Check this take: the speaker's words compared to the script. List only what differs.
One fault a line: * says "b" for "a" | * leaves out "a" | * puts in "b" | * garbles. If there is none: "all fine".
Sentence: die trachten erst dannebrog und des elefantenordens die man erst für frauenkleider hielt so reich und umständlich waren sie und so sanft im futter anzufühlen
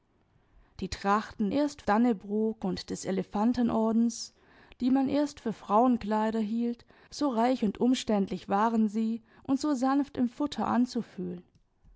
all fine